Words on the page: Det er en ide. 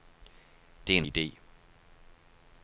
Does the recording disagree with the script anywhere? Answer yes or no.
no